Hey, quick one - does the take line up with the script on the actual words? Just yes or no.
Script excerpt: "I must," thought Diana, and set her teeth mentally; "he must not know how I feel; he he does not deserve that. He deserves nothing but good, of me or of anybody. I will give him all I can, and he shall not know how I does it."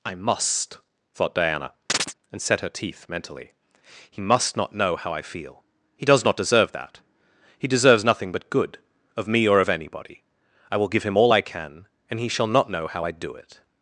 no